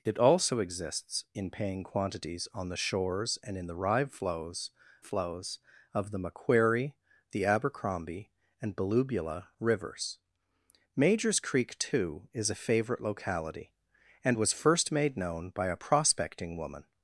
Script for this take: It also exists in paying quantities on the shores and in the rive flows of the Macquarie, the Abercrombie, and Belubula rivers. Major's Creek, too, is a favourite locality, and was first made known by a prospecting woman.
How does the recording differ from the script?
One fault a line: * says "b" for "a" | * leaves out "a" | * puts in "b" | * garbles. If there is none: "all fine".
* puts in "flows"